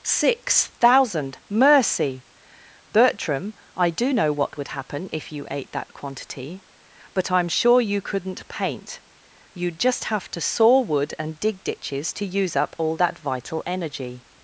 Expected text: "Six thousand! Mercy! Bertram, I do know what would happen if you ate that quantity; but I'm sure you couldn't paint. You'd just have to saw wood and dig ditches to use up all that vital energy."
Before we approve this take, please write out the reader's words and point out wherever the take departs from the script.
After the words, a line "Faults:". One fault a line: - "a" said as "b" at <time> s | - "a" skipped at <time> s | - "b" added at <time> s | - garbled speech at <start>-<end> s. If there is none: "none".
"Six thousand! Mercy! Bertram, I do know what would happen if you ate that quantity; but I'm sure you couldn't paint. You'd just have to saw wood and dig ditches to use up all that vital energy."
Faults:
none